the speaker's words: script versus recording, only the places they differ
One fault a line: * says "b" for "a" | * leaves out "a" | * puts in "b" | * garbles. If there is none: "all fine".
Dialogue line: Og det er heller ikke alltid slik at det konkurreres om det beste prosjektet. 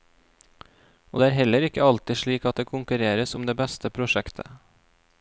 all fine